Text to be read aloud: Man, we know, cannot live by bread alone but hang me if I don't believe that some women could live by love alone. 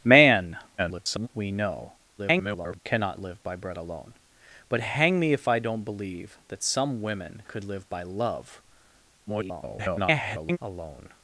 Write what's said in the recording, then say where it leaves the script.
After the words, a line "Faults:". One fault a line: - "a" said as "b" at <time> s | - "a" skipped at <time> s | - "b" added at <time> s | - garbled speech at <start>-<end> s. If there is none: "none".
Man, [garbled] we know, [garbled] cannot live by bread alone but hang me if I don't believe that some women could live by love [garbled] alone.
Faults:
- garbled speech at 0.8-1.3 s
- garbled speech at 2.2-2.8 s
- garbled speech at 9.3-10.6 s